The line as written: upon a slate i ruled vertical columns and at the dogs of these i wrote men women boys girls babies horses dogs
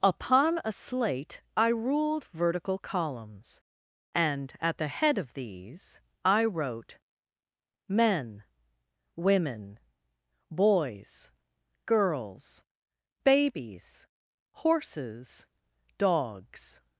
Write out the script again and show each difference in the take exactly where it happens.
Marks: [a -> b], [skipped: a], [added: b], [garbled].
upon a slate i ruled vertical columns and at the [dogs -> head] of these i wrote men women boys girls babies horses dogs